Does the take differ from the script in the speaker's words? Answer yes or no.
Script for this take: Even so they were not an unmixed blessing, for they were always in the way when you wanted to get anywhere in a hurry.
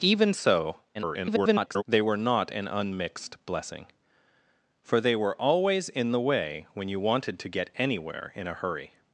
yes